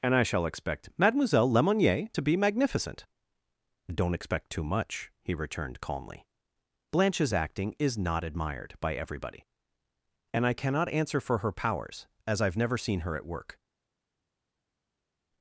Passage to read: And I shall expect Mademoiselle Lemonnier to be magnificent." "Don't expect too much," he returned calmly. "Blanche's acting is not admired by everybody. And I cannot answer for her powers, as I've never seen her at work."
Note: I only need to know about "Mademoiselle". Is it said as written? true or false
true